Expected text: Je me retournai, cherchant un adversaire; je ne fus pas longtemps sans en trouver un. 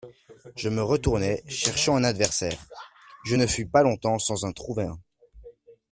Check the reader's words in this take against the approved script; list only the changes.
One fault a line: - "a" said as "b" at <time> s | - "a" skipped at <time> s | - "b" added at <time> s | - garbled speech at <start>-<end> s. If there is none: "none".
none